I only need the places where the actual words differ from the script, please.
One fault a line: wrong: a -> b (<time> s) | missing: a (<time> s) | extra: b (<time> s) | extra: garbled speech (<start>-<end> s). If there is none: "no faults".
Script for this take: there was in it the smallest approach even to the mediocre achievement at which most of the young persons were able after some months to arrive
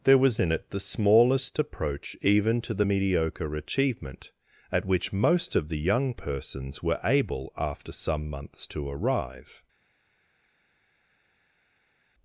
no faults